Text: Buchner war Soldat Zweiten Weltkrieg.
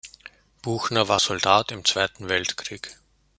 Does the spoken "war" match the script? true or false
true